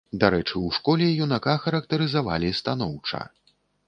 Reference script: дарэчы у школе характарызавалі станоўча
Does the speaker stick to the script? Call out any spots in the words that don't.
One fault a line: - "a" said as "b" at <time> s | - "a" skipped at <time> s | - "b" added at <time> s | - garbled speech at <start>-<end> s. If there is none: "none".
- "юнака" added at 1.2 s